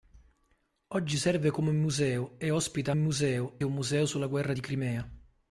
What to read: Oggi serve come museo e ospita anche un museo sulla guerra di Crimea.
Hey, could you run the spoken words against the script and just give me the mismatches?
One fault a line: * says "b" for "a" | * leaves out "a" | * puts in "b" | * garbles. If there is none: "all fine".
* says "museo" for "anche"